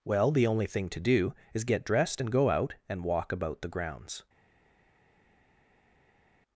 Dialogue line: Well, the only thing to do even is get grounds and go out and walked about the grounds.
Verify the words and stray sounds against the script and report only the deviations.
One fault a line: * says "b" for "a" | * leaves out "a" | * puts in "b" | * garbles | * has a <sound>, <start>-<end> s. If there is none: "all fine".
* leaves out "even"
* says "dressed" for "grounds"
* says "walk" for "walked"